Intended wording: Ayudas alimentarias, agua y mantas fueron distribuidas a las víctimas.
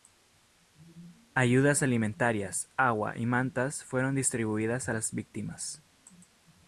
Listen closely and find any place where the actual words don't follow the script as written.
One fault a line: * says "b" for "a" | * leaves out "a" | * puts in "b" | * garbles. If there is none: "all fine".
all fine